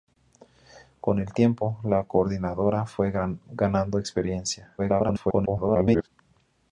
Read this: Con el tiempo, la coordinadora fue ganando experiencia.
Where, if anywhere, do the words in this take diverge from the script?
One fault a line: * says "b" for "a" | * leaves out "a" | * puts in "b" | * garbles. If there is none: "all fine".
* garbles